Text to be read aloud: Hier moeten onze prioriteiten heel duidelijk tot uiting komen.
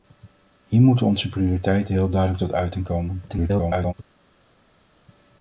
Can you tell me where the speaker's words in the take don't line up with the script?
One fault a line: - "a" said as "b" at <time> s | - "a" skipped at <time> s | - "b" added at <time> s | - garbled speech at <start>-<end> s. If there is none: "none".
- garbled speech at 3.3-3.9 s